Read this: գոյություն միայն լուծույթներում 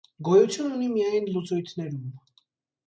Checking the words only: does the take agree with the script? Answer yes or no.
no